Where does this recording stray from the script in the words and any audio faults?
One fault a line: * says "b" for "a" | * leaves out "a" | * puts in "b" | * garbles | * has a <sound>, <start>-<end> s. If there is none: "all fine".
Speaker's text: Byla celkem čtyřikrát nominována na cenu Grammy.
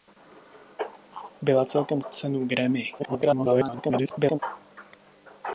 * leaves out "čtyřikrát nominována na"
* garbles